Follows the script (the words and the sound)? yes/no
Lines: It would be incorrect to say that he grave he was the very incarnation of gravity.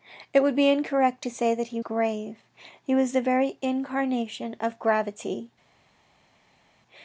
yes